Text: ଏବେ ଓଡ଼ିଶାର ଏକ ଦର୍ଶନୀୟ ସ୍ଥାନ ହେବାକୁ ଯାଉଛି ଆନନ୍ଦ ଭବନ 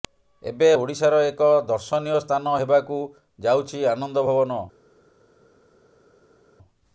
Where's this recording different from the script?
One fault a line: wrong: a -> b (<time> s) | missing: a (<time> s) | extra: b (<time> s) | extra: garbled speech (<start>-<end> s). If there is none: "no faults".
no faults